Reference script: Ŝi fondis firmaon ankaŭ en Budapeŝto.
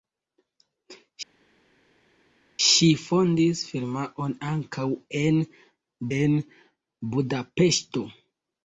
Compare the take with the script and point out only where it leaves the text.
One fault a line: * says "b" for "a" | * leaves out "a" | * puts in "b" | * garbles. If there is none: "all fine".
* puts in "en"